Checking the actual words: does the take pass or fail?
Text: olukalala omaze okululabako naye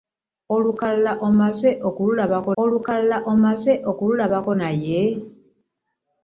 fail